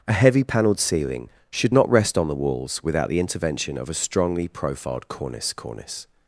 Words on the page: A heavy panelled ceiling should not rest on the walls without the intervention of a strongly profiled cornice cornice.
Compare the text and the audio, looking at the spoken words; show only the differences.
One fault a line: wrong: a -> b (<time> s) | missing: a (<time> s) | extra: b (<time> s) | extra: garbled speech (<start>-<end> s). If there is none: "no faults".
no faults